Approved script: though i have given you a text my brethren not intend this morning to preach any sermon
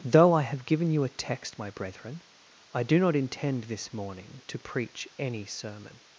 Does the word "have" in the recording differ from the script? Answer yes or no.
no